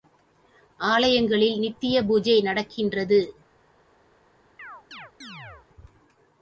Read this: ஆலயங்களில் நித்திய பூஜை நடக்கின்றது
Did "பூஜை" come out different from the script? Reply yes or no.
no